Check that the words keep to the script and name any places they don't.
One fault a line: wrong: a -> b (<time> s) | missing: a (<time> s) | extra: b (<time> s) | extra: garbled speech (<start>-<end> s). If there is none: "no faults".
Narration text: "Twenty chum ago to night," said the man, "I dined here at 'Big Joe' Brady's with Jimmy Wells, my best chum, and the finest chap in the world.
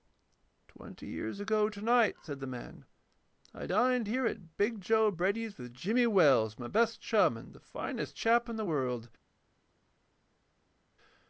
wrong: chum -> years (1.1 s)